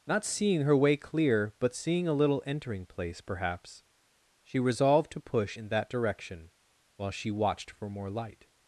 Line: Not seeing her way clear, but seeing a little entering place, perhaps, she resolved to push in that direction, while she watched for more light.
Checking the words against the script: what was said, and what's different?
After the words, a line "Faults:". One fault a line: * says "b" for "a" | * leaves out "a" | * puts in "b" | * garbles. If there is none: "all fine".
Not seeing her way clear, but seeing a little entering place, perhaps, she resolved to push in that direction, while she watched for more light.
Faults:
all fine